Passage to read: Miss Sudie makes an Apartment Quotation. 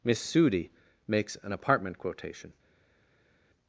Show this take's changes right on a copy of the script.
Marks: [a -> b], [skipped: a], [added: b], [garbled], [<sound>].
Miss Sudie makes an Apartment Quotation.